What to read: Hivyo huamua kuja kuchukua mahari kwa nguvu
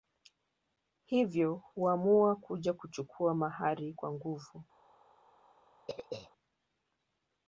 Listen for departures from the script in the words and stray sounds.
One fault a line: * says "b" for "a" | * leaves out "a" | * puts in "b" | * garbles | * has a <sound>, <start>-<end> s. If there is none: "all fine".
* has a throat clearing, 5.9-6.3 s